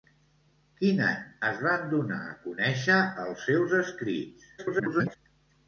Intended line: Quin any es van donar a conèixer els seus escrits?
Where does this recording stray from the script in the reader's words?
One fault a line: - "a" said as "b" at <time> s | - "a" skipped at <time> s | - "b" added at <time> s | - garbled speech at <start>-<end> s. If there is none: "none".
- garbled speech at 4.6-5.2 s